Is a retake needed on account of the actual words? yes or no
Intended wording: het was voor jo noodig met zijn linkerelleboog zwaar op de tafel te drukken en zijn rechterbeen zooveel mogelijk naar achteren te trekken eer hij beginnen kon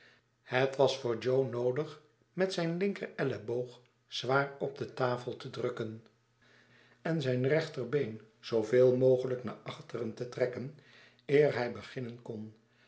no